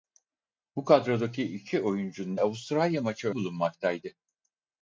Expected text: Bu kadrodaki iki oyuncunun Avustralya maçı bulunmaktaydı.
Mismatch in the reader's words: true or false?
false